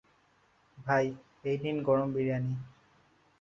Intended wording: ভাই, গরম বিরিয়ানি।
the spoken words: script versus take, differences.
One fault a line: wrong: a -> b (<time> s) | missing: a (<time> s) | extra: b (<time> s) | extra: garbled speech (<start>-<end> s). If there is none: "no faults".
extra: এই নিন (1.4 s)